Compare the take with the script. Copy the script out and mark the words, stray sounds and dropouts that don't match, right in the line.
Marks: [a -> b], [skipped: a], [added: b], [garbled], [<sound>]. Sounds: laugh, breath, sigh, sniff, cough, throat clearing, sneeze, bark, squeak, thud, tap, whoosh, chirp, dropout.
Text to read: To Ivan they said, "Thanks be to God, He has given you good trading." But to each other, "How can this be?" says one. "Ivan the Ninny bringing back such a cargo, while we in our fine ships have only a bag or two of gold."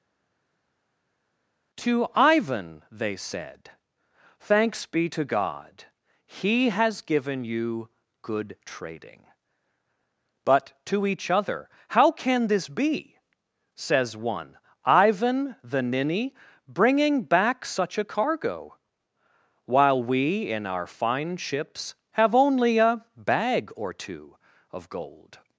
To Ivan they said, "Thanks be to God, He has given you good trading." But to each other, "How can this be?" says one. "Ivan the Ninny bringing back such a cargo, while we in our fine ships have only a bag or two of gold."